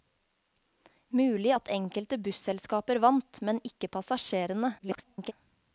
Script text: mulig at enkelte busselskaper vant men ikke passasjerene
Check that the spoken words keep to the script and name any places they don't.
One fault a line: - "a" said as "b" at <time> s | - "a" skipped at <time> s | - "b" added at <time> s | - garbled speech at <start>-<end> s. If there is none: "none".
- garbled speech at 4.8-5.3 s